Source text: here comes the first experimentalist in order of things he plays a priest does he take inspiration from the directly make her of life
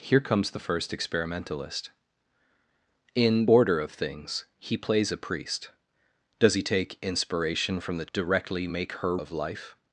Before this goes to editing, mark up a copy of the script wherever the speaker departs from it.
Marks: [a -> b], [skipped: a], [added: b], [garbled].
here comes the first experimentalist in order of things he plays a priest does he take inspiration from the directly make her of life